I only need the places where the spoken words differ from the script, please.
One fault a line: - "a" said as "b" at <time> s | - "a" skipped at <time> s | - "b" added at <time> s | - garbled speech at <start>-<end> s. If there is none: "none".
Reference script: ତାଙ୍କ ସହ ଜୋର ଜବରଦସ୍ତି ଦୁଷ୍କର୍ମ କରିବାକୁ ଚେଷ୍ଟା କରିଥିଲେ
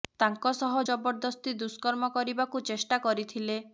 - "ଜୋର" skipped at 0.8 s